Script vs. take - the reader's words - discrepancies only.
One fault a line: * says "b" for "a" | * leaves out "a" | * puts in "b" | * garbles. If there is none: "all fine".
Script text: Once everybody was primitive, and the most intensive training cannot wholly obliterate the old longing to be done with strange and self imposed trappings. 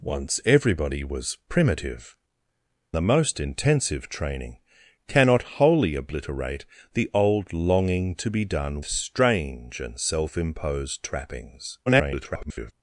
* leaves out "and"
* leaves out "with"
* garbles